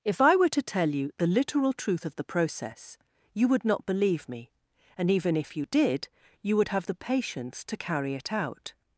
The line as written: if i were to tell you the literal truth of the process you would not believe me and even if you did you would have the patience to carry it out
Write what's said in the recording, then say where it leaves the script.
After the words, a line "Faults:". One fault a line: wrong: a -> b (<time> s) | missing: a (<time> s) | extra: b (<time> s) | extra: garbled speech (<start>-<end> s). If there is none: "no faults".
if i were to tell you the literal truth of the process you would not believe me and even if you did you would have the patience to carry it out
Faults:
no faults